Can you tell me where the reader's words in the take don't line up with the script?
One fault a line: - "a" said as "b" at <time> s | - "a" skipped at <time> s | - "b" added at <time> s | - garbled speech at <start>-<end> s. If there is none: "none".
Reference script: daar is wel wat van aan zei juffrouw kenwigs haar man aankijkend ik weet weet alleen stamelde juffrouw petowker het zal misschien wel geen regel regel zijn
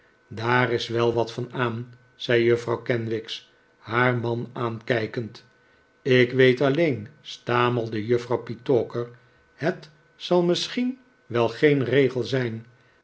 - "weet" skipped at 6.6 s
- "regel" skipped at 12.2 s